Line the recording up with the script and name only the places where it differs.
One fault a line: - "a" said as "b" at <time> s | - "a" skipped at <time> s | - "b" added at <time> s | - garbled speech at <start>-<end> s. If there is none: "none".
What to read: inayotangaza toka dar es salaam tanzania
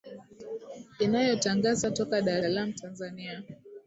- "es" skipped at 2.4 s